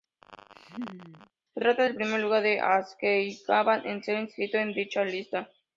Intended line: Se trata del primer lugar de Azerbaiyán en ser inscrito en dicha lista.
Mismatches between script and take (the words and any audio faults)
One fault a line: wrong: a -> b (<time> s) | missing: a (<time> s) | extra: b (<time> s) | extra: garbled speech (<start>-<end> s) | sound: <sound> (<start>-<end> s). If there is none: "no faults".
sound: laugh (0.2-1.3 s)